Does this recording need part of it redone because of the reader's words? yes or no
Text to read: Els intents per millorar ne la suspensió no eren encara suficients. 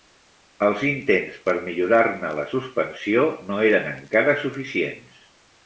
no